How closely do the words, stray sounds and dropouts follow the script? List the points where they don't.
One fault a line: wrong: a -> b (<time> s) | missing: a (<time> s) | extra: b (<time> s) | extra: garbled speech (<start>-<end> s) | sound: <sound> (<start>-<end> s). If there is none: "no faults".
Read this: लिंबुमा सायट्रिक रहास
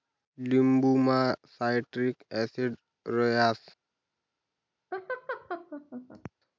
extra: ॲसिड (2.3 s)
sound: laugh (4.9-6.3 s)